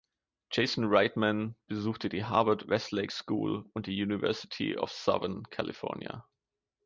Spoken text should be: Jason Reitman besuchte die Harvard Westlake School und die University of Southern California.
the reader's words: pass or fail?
pass